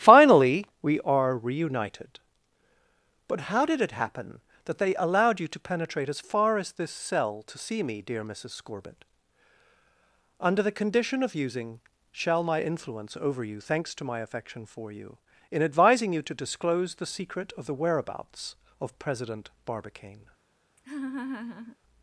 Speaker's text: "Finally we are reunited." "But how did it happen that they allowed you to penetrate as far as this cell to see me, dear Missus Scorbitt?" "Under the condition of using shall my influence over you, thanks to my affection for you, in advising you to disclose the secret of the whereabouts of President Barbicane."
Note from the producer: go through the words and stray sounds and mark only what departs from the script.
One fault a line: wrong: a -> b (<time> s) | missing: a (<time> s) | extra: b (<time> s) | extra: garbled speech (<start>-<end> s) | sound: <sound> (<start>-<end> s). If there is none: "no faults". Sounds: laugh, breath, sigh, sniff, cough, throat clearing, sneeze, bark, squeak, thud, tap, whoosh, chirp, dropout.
sound: laugh (20.8-21.8 s)